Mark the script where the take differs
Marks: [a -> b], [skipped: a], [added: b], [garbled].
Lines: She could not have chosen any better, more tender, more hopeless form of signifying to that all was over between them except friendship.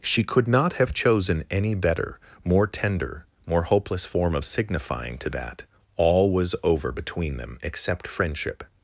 She could not have chosen any better, more tender, more hopeless form of signifying to that all was over between them except friendship.